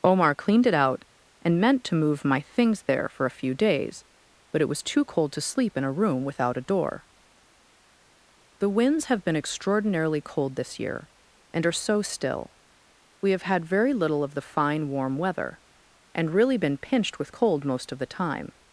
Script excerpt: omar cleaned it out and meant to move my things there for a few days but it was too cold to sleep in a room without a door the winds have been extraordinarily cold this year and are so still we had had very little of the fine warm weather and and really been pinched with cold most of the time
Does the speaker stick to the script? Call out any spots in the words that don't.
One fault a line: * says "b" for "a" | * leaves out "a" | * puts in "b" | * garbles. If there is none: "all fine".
* says "have" for "had"
* leaves out "and"